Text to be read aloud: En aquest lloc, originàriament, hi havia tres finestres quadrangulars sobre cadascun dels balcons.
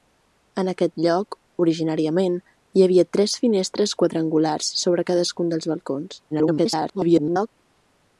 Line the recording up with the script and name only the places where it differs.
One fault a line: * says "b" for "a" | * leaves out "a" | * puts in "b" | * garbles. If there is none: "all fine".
* garbles